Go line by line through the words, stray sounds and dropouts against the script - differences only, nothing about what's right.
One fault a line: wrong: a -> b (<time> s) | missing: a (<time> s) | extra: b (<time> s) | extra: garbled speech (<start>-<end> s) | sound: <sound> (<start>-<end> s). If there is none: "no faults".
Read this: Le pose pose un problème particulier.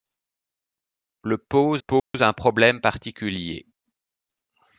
sound: dropout (2.0-2.1 s)